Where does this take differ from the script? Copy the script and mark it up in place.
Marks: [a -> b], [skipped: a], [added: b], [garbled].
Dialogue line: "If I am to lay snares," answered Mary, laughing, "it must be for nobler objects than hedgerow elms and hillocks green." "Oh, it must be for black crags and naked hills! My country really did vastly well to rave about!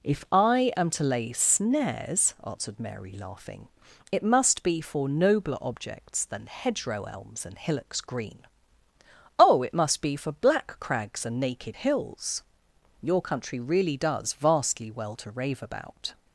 "If I am to lay snares," answered Mary, laughing, "it must be for nobler objects than hedgerow elms and hillocks green." "Oh, it must be for black crags and naked hills! [My -> Your] country really [did -> does] vastly well to rave about!